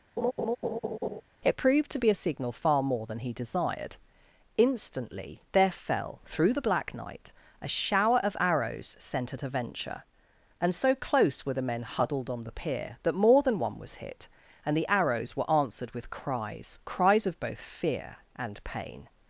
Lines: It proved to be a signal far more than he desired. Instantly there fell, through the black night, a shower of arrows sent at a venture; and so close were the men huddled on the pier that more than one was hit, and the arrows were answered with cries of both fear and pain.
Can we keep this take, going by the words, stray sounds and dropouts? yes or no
no